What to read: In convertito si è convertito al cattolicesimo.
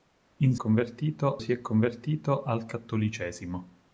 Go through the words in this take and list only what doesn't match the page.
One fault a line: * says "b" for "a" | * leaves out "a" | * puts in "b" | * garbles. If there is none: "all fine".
all fine